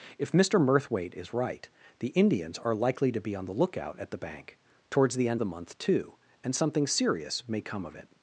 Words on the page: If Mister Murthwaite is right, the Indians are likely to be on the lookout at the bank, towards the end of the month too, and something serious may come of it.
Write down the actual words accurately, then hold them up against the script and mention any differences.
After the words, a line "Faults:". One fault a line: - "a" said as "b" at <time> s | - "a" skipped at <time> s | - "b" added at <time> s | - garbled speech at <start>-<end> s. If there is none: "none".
If Mister Murthwaite is right, the Indians are likely to be on the lookout at the bank, towards the end the month too, and something serious may come of it.
Faults:
- "of" skipped at 5.4 s